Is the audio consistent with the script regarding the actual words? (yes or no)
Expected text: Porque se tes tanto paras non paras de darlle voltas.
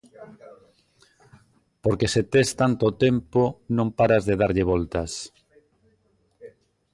no